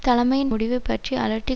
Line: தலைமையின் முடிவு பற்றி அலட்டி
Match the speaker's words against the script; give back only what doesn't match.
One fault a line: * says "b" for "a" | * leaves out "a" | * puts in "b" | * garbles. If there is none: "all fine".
all fine